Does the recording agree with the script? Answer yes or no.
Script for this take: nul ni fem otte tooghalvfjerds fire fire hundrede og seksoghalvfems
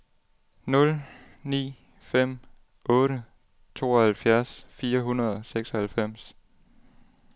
no